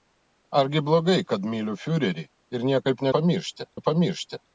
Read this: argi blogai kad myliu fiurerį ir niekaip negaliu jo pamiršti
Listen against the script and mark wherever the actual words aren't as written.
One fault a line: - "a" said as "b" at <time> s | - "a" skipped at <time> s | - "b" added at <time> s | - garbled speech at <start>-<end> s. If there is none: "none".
- "negaliu" said as "pamiršti" at 3.2 s